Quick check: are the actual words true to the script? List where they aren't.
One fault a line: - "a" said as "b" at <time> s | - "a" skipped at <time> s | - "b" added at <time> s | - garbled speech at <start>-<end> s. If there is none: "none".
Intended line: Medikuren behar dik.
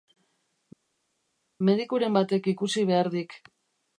- "batek ikusi" added at 2.2 s